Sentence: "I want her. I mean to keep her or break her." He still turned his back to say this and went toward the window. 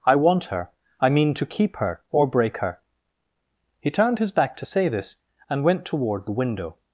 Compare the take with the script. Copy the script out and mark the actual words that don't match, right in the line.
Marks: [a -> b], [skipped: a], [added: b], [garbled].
"I want her. I mean to keep her or break her." He [skipped: still] turned his back to say this and went toward the window.